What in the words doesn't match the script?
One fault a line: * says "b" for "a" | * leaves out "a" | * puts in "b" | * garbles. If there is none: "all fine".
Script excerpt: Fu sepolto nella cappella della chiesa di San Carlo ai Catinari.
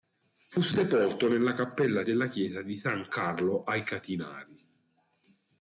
all fine